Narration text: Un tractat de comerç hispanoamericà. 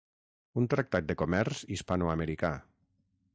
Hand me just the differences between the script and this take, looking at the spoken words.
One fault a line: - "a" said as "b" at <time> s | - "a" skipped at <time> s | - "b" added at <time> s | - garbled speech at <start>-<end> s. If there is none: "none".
none